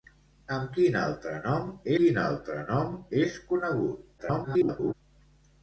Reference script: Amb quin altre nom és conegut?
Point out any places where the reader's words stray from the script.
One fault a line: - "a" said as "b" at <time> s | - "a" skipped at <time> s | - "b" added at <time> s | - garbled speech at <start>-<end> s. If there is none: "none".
- "quin altre nom" added at 2.0 s
- garbled speech at 4.2-4.9 s